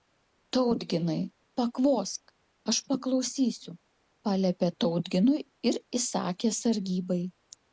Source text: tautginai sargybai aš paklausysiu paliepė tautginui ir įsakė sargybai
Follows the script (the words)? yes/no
no